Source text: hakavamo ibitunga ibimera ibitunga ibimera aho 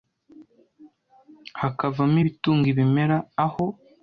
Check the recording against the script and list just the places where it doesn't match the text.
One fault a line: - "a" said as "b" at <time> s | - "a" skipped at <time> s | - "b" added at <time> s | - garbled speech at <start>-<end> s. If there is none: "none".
- "ibitunga ibimera" skipped at 3.2 s